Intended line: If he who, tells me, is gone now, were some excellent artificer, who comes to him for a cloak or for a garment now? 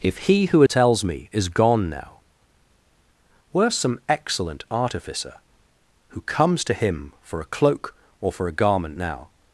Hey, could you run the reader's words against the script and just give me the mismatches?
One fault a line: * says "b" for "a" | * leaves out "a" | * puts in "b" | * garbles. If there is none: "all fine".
all fine